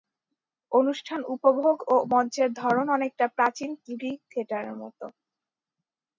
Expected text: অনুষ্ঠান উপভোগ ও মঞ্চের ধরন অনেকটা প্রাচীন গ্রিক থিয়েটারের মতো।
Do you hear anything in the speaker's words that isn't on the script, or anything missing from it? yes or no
no